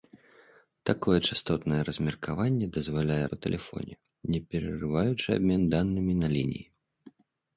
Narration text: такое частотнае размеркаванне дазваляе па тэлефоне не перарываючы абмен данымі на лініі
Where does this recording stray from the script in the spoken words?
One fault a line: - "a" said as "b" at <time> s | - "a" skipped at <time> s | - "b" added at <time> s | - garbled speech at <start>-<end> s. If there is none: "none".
none